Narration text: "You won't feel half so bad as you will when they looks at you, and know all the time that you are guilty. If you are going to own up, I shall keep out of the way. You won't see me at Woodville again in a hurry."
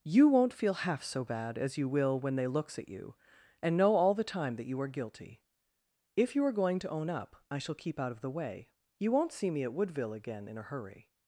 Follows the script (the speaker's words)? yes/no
yes